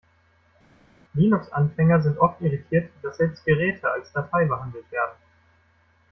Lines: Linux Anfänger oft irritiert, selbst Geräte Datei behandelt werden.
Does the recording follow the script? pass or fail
fail